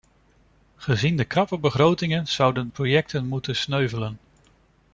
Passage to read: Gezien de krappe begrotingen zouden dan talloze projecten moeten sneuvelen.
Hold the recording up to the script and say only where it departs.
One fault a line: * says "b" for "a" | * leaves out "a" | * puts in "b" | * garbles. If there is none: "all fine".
* leaves out "dan talloze"